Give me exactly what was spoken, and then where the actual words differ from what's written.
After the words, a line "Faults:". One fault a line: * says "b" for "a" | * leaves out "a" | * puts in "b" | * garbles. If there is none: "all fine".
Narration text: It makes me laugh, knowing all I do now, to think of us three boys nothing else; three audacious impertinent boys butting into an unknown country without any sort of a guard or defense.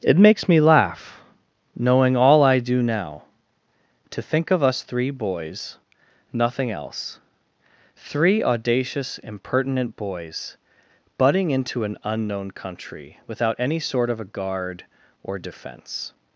It makes me laugh, knowing all I do now, to think of us three boys nothing else; three audacious impertinent boys butting into an unknown country without any sort of a guard or defense.
Faults:
all fine